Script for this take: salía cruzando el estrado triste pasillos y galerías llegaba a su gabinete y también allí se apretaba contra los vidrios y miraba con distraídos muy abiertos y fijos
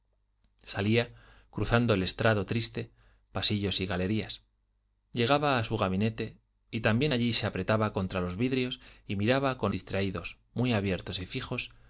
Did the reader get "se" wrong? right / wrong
right